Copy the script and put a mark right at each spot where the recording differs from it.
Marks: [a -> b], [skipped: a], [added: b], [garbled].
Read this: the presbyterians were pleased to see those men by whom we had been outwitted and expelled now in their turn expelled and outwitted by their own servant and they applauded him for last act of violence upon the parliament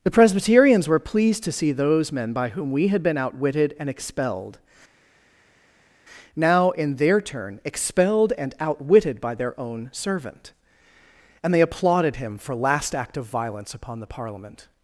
the presbyterians were pleased to see those men by whom we had been outwitted and expelled now in their turn expelled and outwitted by their own servant and they applauded him for last act of violence upon the parliament